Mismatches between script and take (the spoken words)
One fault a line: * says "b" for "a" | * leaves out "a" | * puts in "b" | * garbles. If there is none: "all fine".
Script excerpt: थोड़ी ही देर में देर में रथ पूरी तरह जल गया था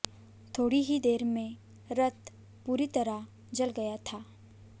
* leaves out "देर में"